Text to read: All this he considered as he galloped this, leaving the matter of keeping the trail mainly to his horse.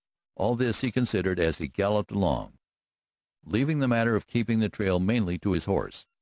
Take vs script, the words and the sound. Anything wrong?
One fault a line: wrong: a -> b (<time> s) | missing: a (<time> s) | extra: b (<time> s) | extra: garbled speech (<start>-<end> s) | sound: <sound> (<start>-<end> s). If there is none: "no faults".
wrong: this -> along (2.1 s)